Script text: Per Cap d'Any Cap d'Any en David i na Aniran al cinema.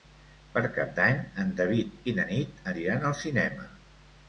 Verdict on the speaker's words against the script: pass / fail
fail